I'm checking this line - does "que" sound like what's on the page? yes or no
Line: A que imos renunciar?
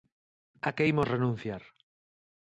yes